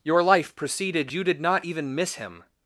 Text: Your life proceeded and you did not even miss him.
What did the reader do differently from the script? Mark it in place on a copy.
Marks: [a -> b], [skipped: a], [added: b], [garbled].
Your life proceeded [skipped: and] you did not even miss him.